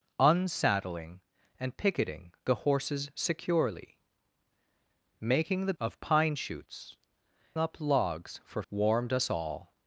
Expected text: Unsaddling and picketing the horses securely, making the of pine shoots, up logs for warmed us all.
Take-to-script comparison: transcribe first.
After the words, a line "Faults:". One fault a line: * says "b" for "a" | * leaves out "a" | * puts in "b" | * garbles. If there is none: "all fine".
Unsaddling and picketing the horses securely, making the of pine shoots, up logs for warmed us all.
Faults:
all fine